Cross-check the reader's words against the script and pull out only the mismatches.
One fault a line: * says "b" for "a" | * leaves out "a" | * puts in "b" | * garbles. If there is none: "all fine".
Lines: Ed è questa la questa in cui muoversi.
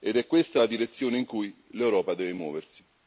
* says "direzione" for "questa"
* puts in "l'Europa deve"